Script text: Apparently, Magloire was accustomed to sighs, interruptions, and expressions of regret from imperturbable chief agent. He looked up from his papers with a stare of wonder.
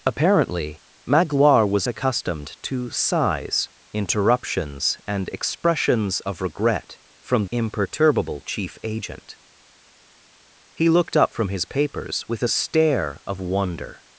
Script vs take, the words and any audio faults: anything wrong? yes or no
no